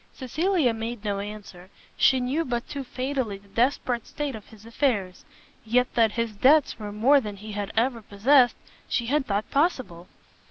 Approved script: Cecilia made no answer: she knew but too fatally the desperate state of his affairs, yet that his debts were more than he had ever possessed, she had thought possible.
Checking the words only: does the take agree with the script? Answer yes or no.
yes